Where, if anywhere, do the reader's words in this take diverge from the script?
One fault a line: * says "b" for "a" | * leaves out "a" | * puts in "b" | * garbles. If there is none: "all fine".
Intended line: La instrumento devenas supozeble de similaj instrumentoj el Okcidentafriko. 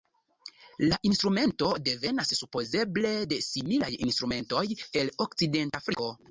all fine